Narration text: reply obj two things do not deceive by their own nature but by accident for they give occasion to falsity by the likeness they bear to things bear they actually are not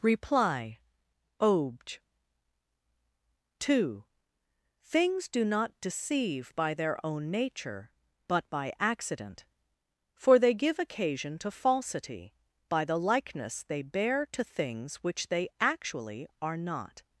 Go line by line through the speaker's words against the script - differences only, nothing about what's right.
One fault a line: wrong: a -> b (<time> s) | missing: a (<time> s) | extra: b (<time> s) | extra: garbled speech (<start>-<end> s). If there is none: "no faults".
wrong: bear -> which (15.0 s)